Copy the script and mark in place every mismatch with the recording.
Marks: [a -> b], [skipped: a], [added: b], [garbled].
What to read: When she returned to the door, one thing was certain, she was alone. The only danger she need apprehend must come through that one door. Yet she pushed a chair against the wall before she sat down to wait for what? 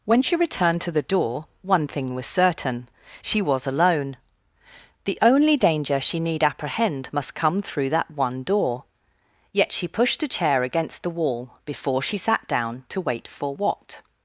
When she returned to the door, one thing was certain, she was alone. The only danger she need apprehend must come through that one door. Yet she pushed a chair against the wall before she sat down to wait for what?